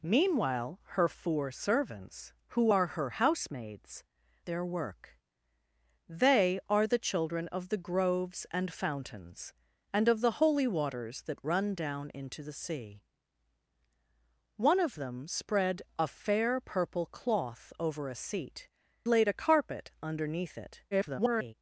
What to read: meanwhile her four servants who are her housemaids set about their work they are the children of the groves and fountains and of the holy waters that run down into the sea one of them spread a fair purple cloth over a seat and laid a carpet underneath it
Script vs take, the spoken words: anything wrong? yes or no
yes